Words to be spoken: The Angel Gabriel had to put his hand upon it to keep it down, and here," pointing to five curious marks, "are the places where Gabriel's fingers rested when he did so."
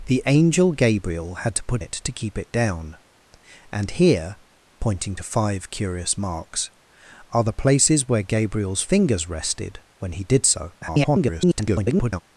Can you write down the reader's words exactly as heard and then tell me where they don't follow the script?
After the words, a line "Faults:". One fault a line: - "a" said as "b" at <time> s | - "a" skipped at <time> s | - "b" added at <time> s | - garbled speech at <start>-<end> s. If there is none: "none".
The Angel Gabriel had to put it to keep it down, and here," pointing to five curious marks, "are the places where Gabriel's fingers rested when he did so." [garbled]
Faults:
- "his hand upon" skipped at 1.8 s
- garbled speech at 10.8-12.2 s